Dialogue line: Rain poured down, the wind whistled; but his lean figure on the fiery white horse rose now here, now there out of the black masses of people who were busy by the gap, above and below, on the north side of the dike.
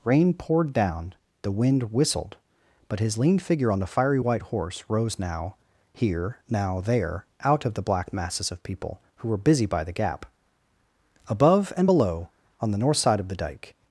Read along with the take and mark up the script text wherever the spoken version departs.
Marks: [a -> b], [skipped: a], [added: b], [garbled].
Rain poured down, the wind whistled; but his lean figure on the fiery white horse rose now here, now there out of the black masses of people who were busy by the gap, above and below, on the north side of the dike.